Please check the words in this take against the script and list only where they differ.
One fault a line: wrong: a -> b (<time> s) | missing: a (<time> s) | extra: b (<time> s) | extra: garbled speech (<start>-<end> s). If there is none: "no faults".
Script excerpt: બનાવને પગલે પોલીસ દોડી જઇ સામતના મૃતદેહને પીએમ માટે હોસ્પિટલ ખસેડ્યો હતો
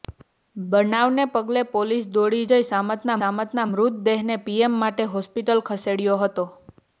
extra: સામતના (3.2 s)